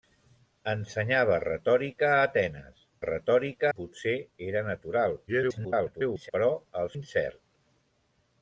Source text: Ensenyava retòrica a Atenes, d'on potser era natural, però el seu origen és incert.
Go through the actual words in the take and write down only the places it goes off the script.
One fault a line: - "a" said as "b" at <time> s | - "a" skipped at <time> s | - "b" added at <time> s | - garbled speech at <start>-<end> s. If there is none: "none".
- "d'on" said as "retòrica" at 3.0 s
- garbled speech at 5.3-6.3 s
- "seu origen és" skipped at 6.9 s